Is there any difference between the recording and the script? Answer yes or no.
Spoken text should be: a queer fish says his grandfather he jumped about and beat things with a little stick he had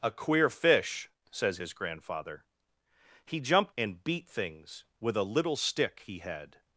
yes